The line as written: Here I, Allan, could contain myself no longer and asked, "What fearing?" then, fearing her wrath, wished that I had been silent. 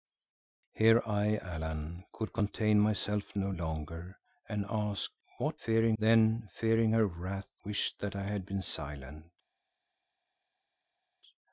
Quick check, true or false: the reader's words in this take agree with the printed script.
true